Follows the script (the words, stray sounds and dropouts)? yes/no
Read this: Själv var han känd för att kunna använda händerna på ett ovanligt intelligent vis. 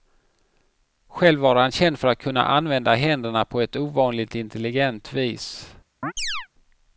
no